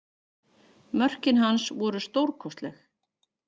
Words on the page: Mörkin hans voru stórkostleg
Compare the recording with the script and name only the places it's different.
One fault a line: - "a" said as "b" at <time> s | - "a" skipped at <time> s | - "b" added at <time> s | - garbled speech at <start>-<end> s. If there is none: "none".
none